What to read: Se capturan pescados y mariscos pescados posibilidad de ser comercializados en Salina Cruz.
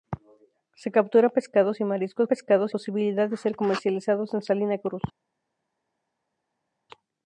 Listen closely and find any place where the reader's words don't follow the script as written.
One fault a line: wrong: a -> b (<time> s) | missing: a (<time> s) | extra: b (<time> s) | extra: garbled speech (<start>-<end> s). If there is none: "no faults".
no faults